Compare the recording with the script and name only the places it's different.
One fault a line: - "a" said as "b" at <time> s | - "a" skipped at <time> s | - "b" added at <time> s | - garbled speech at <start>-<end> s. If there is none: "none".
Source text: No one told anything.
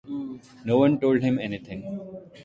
- "him" added at 1.2 s